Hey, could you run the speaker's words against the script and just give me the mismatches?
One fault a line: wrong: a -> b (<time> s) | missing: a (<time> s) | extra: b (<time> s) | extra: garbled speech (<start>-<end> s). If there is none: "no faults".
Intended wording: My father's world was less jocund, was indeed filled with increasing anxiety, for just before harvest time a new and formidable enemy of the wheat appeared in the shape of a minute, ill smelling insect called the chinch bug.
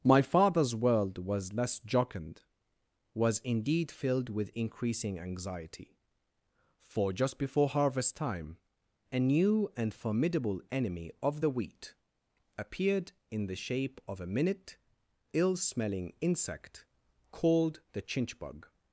no faults